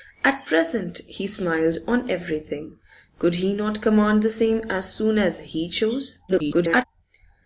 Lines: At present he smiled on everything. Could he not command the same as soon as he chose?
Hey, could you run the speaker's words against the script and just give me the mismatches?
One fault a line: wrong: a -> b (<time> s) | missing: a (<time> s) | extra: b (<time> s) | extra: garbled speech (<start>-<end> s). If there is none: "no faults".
extra: garbled speech (6.3-6.8 s)